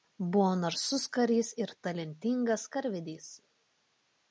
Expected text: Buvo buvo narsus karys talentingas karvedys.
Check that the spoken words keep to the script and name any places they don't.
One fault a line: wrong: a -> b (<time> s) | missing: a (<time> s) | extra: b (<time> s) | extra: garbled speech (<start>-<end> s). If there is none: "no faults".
missing: buvo (0.5 s)
extra: ir (1.6 s)